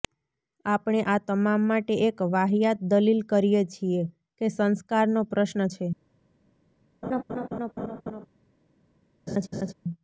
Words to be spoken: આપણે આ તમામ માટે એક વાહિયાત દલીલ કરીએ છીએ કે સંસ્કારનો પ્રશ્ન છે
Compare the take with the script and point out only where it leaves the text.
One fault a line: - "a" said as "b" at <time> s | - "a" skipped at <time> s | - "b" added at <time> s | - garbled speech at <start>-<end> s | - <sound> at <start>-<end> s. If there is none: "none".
- laugh at 7.0-8.3 s
- laugh at 9.3-9.7 s